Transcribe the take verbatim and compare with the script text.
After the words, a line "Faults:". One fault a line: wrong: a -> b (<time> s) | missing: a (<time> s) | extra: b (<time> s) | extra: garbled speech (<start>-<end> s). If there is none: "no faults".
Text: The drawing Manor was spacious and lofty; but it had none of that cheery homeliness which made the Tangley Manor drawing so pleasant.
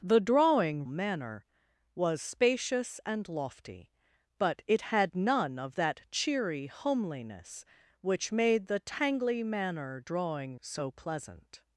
The drawing Manor was spacious and lofty; but it had none of that cheery homeliness which made the Tangley Manor drawing so pleasant.
Faults:
no faults